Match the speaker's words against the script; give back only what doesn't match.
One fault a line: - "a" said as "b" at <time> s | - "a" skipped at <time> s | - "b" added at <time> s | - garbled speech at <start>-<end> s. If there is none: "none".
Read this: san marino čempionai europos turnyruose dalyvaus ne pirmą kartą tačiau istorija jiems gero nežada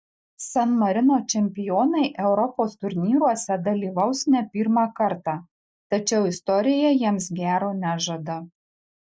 none